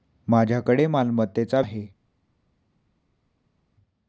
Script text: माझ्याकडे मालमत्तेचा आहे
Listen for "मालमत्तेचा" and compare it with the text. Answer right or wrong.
right